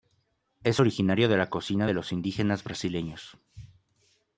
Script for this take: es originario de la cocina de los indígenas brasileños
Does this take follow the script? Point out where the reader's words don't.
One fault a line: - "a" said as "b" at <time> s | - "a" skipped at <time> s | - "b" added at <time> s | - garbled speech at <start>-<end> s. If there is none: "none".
none